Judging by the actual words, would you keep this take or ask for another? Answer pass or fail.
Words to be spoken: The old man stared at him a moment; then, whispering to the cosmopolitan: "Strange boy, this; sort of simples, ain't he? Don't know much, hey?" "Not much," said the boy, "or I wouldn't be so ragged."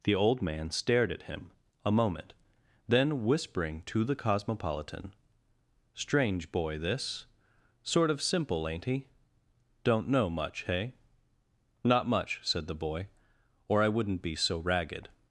fail